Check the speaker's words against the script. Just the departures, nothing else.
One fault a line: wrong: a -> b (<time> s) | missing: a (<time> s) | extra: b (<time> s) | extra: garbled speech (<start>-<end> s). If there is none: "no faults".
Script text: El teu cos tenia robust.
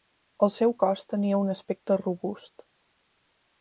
wrong: teu -> seu (0.5 s)
extra: un aspecte (1.4 s)